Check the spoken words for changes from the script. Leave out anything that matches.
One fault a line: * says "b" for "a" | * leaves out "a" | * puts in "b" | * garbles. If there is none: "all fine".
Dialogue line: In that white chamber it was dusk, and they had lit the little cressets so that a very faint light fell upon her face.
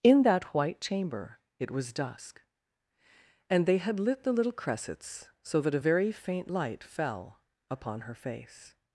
all fine